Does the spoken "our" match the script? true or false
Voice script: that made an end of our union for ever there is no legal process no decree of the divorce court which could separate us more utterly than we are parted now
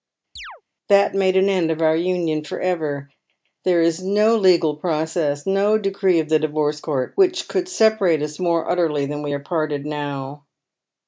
true